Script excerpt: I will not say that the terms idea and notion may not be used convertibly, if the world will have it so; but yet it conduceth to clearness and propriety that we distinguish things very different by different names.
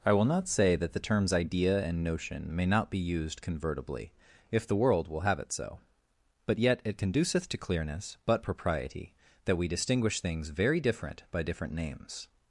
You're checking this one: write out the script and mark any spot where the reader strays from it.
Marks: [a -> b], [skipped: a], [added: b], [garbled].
I will not say that the terms idea and notion may not be used convertibly, if the world will have it so; but yet it conduceth to clearness [and -> but] propriety that we distinguish things very different by different names.